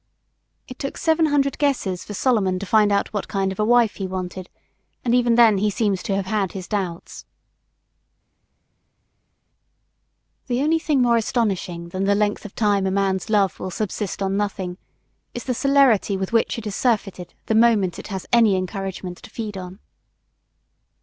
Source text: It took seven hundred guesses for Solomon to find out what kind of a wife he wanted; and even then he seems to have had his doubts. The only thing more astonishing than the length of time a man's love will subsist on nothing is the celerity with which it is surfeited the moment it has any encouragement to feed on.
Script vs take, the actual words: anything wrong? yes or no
no